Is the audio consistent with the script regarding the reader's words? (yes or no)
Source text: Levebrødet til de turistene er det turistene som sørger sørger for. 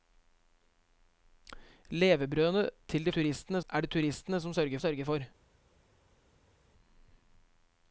yes